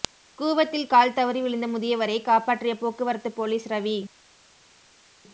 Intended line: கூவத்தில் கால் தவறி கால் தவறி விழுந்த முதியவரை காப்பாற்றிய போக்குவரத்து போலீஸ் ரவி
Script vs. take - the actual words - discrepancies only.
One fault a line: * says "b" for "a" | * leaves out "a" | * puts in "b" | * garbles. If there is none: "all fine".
* leaves out "கால் தவறி"